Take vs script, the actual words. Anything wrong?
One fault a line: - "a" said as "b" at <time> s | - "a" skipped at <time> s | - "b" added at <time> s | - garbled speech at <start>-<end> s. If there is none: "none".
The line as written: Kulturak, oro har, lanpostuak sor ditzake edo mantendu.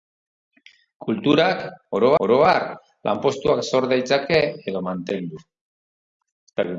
- "oro" added at 2.2 s